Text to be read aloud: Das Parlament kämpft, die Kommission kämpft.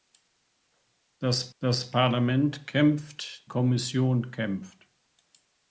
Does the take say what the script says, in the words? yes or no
no